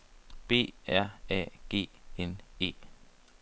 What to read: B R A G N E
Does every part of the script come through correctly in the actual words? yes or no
yes